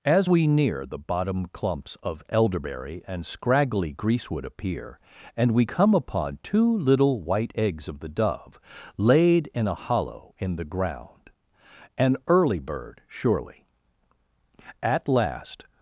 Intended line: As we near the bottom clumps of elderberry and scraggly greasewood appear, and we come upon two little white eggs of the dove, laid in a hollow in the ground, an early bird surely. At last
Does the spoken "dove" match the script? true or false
true